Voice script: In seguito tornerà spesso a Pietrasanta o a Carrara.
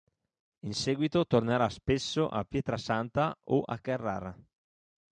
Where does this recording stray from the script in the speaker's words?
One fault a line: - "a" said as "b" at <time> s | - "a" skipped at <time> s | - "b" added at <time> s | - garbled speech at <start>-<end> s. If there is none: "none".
none